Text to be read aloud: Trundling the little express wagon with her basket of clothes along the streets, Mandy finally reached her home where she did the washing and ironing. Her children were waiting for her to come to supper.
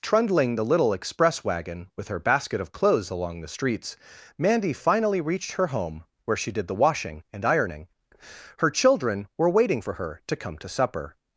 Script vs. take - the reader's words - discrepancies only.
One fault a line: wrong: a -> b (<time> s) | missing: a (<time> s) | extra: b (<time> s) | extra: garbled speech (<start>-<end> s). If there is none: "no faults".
no faults